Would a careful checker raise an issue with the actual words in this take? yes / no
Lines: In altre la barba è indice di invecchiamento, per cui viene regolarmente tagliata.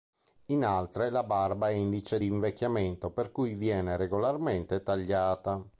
no